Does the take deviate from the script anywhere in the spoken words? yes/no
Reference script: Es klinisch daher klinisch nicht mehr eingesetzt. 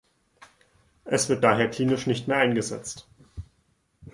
yes